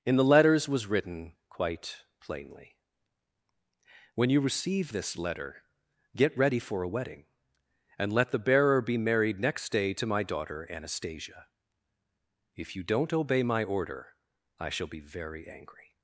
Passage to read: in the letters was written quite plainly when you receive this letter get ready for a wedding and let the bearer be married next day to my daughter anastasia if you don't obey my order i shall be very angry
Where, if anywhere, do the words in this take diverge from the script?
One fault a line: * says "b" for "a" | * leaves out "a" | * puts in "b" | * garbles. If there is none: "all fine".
all fine